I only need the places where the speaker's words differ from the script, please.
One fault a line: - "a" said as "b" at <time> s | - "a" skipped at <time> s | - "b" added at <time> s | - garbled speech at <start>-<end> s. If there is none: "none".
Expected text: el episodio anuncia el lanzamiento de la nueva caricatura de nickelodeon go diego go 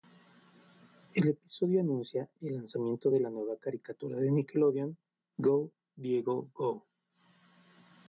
none